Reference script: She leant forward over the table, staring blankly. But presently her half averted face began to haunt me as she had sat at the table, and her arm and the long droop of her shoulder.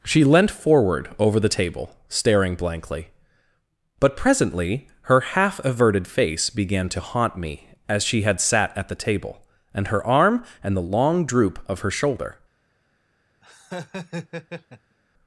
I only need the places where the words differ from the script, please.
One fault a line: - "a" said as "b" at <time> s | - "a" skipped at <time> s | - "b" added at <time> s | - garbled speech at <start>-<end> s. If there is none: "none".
none